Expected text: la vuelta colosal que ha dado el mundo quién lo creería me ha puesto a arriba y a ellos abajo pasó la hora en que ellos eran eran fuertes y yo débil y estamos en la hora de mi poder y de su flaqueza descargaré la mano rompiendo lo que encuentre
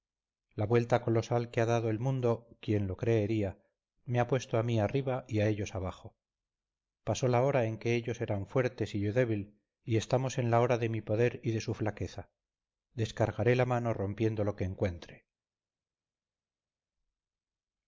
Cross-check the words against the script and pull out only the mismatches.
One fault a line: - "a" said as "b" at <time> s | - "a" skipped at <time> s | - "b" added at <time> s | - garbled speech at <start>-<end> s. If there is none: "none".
- "mí" added at 4.6 s
- "eran" skipped at 8.5 s